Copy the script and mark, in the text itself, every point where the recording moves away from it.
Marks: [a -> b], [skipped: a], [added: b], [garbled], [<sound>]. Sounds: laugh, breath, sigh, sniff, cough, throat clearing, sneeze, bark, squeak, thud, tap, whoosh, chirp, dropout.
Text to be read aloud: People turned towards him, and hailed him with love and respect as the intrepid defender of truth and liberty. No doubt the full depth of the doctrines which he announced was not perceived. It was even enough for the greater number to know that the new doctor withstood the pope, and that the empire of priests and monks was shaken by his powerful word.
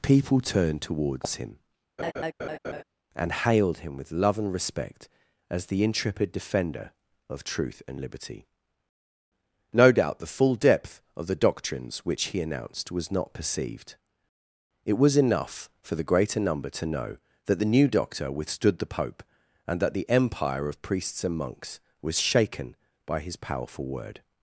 People turned towards him, [laugh] and hailed him with love and respect as the intrepid defender of truth and liberty. No doubt the full depth of the doctrines which he announced was not perceived. It was [skipped: even] enough for the greater number to know that the new doctor withstood the pope, and that the empire of priests and monks was shaken by his powerful word.